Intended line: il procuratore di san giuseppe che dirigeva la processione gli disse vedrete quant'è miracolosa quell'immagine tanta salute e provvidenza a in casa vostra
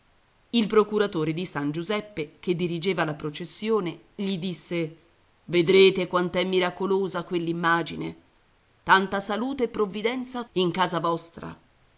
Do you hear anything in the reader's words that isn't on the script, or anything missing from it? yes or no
no